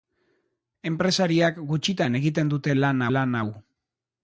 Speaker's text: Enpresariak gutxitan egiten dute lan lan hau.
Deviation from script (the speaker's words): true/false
false